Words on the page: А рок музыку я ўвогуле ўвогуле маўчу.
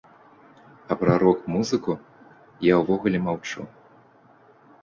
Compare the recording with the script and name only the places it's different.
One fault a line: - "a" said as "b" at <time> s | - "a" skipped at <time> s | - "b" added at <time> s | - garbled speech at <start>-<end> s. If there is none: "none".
- "пра" added at 1.0 s
- "ўвогуле" skipped at 3.2 s